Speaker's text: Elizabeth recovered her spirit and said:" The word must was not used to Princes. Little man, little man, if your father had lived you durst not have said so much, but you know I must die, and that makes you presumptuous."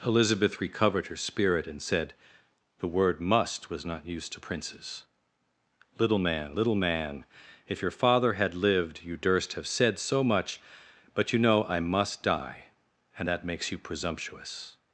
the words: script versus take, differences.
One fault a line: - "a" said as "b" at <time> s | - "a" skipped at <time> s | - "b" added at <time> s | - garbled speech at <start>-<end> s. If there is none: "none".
- "not" skipped at 9.5 s